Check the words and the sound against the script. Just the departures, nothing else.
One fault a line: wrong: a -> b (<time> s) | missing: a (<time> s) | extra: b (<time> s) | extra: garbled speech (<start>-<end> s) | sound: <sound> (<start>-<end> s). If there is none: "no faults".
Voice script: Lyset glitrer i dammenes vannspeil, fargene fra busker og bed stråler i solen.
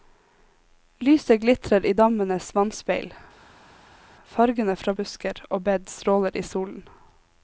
no faults